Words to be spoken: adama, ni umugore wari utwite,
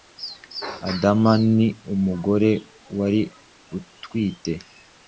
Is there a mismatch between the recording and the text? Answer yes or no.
no